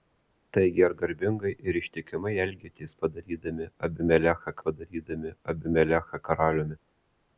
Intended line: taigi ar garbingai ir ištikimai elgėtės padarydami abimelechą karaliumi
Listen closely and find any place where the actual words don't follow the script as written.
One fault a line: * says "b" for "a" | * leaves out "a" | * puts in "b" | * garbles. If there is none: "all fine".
* puts in "padarydami abimelechą"